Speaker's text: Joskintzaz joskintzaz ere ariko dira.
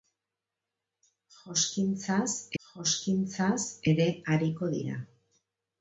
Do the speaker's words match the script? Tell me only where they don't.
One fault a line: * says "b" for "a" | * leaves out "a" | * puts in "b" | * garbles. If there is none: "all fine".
all fine